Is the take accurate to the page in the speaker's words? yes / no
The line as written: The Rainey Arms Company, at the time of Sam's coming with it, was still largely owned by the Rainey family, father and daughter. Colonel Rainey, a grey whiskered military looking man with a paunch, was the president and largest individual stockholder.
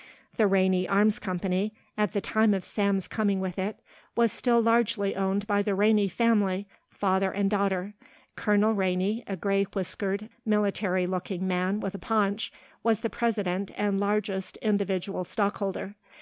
yes